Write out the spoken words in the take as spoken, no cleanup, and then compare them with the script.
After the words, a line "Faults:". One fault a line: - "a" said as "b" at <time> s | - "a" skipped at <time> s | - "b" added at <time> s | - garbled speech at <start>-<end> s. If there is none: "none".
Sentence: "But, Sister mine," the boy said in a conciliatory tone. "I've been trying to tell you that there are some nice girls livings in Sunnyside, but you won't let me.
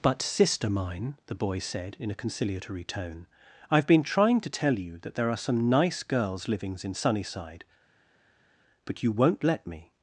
"But, Sister mine," the boy said in a conciliatory tone. "I've been trying to tell you that there are some nice girls livings in Sunnyside, but you won't let me.
Faults:
none